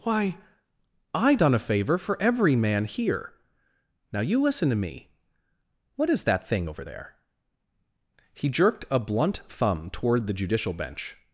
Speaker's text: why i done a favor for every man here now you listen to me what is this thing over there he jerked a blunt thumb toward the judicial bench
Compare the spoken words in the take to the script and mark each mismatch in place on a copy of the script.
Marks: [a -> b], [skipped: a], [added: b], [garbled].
why i done a favor for every man here now you listen to me what is [this -> that] thing over there he jerked a blunt thumb toward the judicial bench